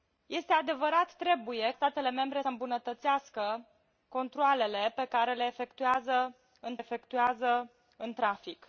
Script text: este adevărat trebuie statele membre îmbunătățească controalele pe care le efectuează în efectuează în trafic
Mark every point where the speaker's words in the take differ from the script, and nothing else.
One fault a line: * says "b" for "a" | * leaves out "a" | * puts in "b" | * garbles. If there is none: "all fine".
all fine